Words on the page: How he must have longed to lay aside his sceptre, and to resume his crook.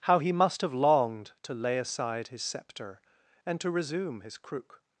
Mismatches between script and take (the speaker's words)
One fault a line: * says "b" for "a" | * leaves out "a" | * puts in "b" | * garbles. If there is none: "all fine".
all fine